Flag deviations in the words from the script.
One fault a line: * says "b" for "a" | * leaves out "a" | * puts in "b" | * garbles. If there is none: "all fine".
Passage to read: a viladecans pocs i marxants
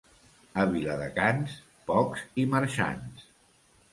all fine